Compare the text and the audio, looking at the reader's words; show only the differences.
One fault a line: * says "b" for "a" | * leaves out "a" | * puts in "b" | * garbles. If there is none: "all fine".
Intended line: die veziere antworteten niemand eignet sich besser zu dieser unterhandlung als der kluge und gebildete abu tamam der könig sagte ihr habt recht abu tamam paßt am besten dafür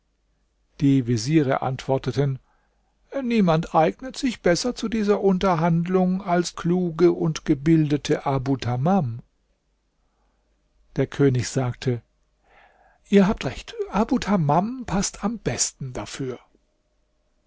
* leaves out "der"